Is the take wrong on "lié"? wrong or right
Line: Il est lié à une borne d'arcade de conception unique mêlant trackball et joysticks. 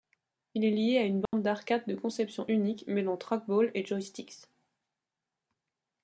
right